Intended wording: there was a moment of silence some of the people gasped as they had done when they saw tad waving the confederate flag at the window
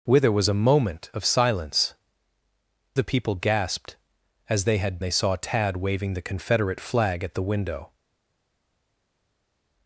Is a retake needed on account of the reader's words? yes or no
yes